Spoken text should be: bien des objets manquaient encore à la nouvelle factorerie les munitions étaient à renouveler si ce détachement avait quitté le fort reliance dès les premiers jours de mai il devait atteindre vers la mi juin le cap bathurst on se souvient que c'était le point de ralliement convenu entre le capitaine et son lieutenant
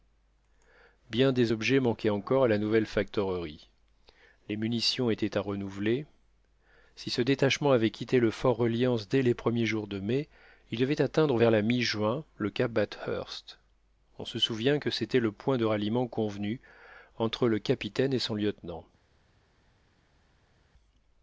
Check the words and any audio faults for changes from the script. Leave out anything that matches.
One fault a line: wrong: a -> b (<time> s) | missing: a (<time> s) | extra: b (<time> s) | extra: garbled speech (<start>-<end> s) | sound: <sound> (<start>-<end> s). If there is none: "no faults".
no faults